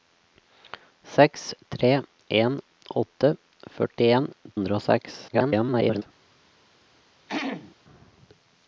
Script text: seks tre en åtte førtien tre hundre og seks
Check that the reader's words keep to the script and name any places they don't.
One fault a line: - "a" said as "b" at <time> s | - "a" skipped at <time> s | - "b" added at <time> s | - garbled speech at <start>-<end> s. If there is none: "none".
- "tre" skipped at 4.3 s
- garbled speech at 5.3-6.0 s